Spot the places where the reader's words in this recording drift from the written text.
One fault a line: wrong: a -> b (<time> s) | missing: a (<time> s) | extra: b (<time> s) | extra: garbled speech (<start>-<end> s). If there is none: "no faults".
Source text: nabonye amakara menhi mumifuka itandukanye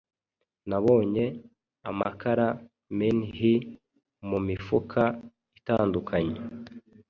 no faults